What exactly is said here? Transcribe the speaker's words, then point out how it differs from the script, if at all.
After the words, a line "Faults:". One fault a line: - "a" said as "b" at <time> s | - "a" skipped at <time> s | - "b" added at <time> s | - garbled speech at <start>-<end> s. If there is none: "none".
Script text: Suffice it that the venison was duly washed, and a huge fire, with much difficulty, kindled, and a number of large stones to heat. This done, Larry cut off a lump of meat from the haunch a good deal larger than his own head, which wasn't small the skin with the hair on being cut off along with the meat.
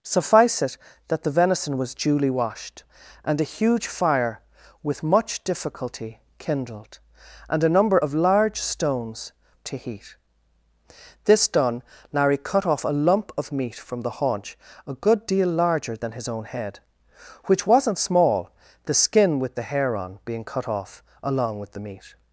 Suffice it that the venison was duly washed, and a huge fire, with much difficulty, kindled, and a number of large stones to heat. This done, Larry cut off a lump of meat from the haunch a good deal larger than his own head, which wasn't small the skin with the hair on being cut off along with the meat.
Faults:
none